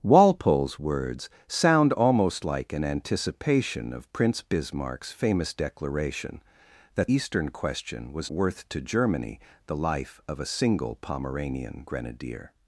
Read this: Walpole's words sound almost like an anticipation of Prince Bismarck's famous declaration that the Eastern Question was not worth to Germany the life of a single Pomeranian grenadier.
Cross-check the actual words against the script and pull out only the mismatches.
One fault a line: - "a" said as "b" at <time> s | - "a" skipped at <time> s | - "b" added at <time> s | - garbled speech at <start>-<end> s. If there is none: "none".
- "the" skipped at 7.1 s
- "not" skipped at 8.3 s